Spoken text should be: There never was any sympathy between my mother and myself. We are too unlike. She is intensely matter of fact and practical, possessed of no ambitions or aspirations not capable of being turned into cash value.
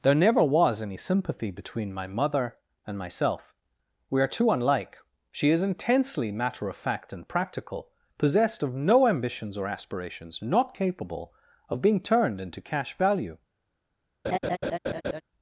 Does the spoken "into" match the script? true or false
true